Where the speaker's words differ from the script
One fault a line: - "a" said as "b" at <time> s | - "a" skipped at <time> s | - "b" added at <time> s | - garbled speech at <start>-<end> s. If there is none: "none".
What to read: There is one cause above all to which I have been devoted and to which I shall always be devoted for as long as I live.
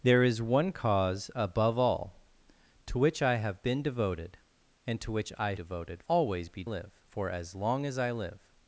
- "shall" said as "devoted" at 5.5 s
- "devoted" said as "live" at 6.6 s